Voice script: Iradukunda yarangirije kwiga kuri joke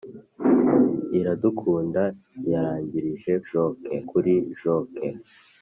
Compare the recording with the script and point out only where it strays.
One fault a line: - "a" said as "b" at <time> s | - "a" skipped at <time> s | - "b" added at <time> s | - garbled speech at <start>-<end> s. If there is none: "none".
- "kwiga" said as "joke" at 3.5 s